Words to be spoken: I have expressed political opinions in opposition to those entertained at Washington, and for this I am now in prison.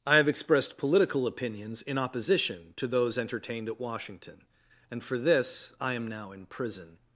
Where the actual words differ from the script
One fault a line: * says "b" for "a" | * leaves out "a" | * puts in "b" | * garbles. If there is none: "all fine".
all fine